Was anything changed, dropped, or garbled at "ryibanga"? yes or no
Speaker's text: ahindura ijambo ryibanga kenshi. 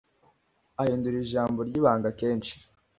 no